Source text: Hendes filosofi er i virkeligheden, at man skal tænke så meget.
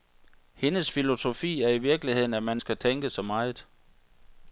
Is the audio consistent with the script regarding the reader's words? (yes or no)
yes